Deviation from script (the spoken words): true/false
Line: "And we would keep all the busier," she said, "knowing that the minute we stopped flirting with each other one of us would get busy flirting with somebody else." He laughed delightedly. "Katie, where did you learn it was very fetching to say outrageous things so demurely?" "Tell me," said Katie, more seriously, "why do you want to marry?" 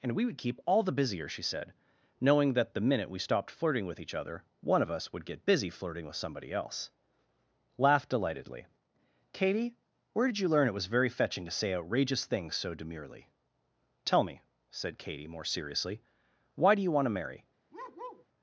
true